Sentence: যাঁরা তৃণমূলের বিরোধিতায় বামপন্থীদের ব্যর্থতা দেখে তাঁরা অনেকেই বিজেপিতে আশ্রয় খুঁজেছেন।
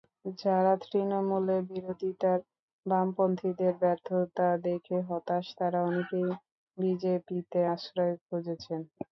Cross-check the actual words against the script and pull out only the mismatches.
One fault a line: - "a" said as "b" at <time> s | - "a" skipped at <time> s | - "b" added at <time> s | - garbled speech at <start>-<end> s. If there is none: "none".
- "হতাশ" added at 5.1 s